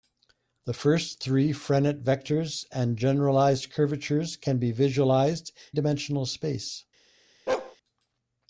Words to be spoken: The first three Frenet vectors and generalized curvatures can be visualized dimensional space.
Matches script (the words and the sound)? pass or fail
fail